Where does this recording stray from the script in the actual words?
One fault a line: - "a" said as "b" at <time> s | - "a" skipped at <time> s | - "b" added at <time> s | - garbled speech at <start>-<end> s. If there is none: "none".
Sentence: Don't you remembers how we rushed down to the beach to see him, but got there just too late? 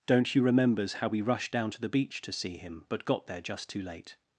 none